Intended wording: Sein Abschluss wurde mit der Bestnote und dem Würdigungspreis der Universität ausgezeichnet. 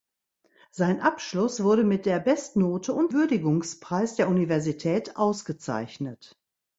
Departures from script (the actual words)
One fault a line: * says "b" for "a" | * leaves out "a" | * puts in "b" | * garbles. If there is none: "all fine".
* leaves out "dem"